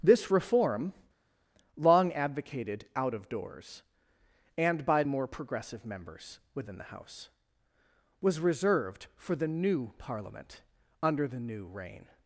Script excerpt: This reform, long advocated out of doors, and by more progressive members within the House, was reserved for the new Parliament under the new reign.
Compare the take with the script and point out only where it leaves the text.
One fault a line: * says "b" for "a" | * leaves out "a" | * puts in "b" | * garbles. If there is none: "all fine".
all fine